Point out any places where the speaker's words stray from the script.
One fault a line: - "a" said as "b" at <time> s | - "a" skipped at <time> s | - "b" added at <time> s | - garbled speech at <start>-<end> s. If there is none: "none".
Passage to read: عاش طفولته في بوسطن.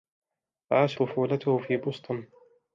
none